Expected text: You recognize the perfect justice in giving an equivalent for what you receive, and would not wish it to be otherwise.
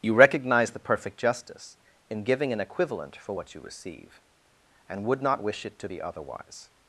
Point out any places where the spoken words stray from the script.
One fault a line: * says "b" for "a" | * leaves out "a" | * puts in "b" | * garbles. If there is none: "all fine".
all fine